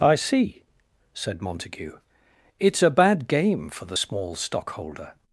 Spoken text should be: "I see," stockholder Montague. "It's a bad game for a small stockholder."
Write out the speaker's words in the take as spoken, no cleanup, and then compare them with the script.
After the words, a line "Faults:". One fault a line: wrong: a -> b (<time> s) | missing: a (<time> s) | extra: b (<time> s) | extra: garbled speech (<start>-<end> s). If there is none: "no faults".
"I see," said Montague. "It's a bad game for the small stockholder."
Faults:
wrong: stockholder -> said (1.1 s)
wrong: a -> the (3.9 s)